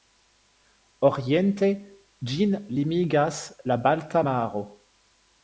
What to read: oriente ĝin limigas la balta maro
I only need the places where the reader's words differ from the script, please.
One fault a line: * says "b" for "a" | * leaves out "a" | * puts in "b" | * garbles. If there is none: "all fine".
all fine